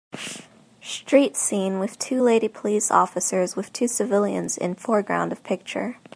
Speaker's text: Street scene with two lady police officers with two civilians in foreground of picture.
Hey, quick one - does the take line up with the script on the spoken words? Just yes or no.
yes